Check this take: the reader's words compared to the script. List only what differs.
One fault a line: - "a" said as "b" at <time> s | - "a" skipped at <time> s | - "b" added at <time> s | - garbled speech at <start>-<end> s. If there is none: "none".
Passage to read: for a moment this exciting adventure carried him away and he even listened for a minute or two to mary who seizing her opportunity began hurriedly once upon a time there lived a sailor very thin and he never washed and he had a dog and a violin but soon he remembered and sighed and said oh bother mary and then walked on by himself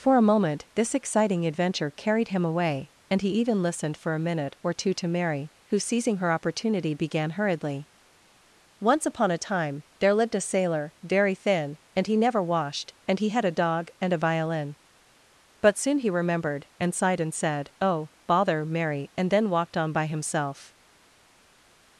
none